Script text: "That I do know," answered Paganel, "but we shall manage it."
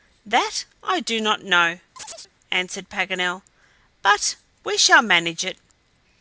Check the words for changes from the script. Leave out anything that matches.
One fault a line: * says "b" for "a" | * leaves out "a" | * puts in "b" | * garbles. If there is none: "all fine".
* puts in "not"